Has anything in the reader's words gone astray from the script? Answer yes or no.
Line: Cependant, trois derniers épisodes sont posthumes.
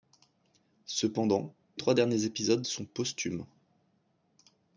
no